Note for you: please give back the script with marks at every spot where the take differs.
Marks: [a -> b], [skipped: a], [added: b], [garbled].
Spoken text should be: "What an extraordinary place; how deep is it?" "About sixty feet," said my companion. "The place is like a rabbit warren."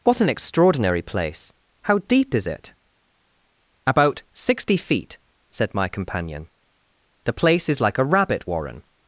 "What an extraordinary place; how deep is it?" "About sixty feet," said my companion. "The place is like a rabbit warren."